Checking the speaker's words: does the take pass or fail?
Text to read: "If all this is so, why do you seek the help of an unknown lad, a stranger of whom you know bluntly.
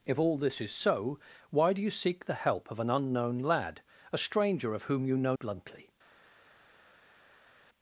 pass